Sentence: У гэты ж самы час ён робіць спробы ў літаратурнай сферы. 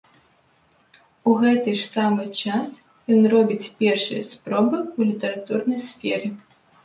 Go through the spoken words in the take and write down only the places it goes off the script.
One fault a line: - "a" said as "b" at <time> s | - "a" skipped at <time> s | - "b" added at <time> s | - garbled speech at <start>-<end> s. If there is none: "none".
- "першыя" added at 3.8 s